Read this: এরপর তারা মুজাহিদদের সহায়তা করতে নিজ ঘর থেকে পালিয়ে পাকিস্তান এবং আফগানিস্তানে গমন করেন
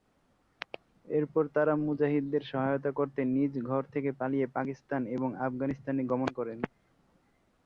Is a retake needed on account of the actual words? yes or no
no